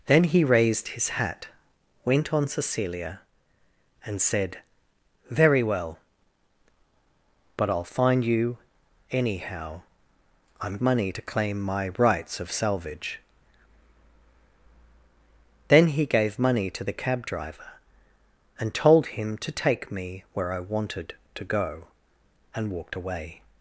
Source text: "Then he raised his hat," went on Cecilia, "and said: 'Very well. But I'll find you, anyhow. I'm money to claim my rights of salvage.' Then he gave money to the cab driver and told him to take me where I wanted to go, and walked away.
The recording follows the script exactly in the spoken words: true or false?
true